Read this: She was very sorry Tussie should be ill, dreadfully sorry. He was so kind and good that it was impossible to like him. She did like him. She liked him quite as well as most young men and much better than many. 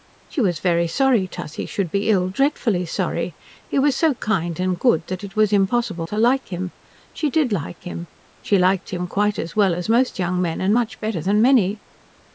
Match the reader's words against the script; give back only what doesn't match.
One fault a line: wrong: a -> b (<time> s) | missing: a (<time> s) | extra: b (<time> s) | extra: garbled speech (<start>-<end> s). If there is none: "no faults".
no faults